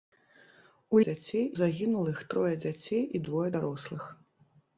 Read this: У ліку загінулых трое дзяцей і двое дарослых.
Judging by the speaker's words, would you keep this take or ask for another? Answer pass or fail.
fail